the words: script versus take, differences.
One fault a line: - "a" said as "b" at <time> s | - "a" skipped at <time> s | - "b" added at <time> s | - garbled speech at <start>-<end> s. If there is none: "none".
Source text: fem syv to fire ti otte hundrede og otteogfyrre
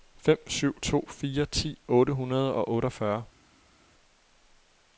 none